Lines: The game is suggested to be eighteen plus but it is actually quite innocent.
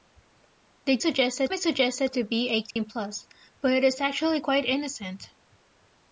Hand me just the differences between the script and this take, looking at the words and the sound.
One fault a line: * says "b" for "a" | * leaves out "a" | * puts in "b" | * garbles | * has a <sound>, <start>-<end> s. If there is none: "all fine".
* says "suggested" for "game"
* has a dropout, 2.7-2.8 s